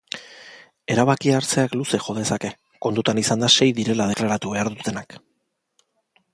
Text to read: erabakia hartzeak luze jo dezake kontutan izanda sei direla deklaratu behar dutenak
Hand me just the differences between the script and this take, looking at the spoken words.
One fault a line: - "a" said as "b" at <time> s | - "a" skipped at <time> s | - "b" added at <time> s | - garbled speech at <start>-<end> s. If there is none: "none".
none